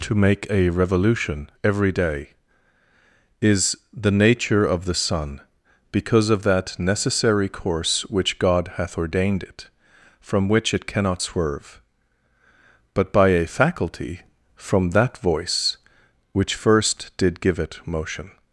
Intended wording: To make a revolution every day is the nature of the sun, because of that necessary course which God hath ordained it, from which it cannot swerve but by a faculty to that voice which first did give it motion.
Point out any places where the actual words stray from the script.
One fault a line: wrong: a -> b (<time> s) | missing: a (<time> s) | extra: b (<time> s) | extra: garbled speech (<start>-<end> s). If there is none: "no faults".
wrong: to -> from (14.5 s)